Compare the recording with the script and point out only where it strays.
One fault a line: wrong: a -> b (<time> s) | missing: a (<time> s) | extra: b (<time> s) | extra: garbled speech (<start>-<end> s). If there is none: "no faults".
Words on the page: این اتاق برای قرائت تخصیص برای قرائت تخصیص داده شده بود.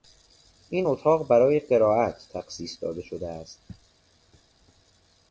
missing: برای قرائت تخصیص (2.8 s)
wrong: بود -> است (3.3 s)